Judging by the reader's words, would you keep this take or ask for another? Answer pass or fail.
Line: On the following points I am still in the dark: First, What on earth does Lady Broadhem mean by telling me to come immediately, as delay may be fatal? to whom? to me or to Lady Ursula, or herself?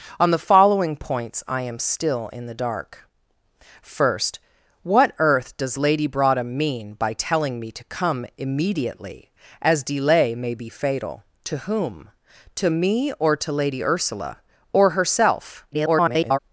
fail